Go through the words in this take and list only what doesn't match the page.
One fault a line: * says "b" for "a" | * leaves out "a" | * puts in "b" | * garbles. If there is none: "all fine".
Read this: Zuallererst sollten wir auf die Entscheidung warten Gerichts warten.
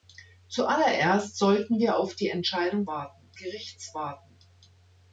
all fine